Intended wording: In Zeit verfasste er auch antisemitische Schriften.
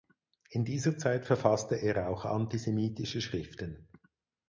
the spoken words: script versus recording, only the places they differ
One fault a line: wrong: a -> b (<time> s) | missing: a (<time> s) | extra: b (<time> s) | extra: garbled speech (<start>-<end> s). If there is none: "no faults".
extra: dieser (0.7 s)